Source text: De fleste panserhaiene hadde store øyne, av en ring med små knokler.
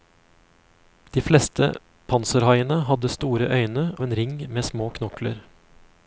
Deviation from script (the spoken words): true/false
false